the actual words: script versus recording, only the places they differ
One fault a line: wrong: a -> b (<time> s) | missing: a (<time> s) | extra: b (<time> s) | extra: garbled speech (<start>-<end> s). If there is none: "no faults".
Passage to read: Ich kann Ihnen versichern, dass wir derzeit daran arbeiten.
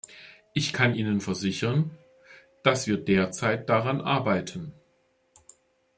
no faults